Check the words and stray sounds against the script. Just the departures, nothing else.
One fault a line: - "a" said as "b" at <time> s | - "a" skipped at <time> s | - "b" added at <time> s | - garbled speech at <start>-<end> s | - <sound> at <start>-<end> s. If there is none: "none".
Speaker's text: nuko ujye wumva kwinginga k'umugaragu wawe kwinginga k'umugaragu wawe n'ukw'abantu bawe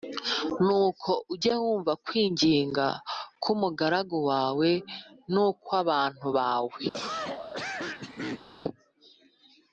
- "kwinginga k'umugaragu wawe" skipped at 4.7 s
- cough at 6.9-8.5 s